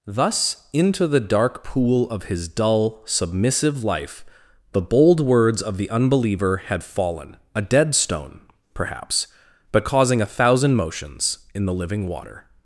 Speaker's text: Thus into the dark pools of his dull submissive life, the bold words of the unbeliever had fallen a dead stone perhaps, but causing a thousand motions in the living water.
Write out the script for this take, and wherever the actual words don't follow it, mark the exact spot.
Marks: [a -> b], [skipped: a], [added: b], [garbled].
Thus into the dark [pools -> pool] of his dull submissive life, the bold words of the unbeliever had fallen a dead stone perhaps, but causing a thousand motions in the living water.